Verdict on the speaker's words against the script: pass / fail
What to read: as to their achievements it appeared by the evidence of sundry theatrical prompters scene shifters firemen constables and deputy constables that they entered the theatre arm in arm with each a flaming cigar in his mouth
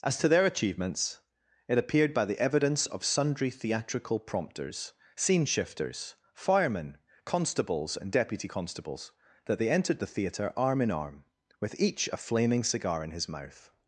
pass